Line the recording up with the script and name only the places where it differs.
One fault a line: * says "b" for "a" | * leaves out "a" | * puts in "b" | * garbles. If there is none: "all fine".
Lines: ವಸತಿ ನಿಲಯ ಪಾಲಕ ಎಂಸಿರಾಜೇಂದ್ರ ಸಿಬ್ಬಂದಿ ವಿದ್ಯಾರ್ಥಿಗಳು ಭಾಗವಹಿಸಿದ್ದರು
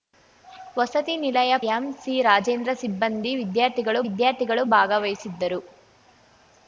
* leaves out "ಪಾಲಕ"
* puts in "ವಿದ್ಯಾರ್ಥಿಗಳು"